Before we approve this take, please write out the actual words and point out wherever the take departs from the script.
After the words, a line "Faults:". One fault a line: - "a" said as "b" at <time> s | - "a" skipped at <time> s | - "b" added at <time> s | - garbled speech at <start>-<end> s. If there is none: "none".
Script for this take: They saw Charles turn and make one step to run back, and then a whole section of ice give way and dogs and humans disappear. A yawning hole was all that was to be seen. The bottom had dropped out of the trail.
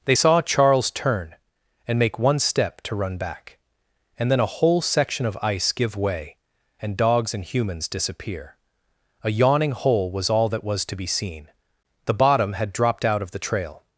They saw Charles turn and make one step to run back, and then a whole section of ice give way and dogs and humans disappear. A yawning hole was all that was to be seen. The bottom had dropped out of the trail.
Faults:
none